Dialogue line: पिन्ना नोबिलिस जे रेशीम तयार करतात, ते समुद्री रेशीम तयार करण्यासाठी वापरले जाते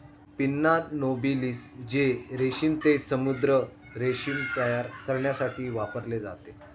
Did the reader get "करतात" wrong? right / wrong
wrong